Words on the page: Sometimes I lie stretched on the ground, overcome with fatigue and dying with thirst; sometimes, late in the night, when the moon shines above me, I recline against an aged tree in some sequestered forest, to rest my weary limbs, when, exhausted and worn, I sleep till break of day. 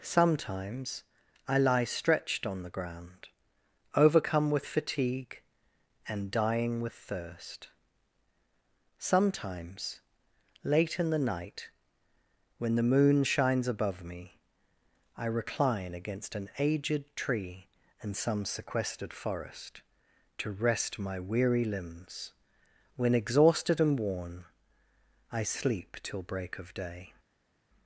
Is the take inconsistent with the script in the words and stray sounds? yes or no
no